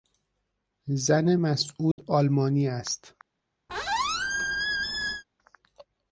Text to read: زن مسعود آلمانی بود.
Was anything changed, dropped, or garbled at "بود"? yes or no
yes